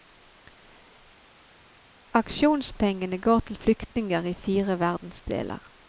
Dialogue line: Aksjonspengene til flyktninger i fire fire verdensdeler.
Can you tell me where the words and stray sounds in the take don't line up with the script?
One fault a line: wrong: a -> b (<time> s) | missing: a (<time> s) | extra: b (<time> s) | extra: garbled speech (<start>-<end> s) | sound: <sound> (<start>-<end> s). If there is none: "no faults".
extra: går (3.2 s)
missing: fire (4.8 s)